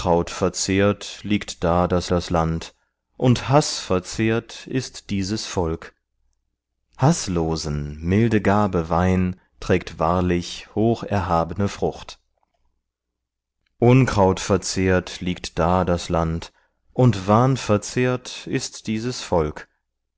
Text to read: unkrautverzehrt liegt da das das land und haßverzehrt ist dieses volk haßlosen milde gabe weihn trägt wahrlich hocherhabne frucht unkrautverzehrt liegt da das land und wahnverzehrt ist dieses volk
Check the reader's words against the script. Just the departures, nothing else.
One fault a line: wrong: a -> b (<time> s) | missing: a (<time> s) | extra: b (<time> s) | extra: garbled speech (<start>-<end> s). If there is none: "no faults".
no faults